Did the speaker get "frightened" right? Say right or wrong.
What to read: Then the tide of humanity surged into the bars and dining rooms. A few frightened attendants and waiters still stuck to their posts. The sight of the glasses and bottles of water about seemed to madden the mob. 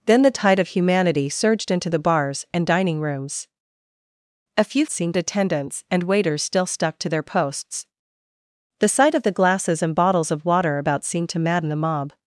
wrong